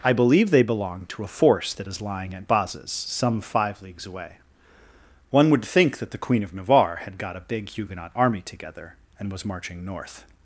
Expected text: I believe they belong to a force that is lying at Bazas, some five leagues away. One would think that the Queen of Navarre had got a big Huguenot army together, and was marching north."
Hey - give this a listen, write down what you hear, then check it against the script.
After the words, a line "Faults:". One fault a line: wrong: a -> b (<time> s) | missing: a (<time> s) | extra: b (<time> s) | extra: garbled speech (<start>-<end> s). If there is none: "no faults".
I believe they belong to a force that is lying at Bazas, some five leagues away. One would think that the Queen of Navarre had got a big Huguenot army together, and was marching north."
Faults:
no faults